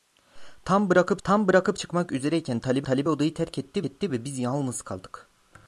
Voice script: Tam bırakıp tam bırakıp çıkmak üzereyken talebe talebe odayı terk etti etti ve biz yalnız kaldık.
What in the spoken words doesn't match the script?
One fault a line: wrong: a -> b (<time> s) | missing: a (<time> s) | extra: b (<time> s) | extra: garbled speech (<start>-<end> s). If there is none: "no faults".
no faults